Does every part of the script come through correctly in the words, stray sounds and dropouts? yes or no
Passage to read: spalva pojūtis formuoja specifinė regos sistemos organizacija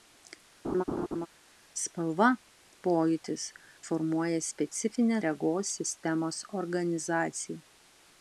no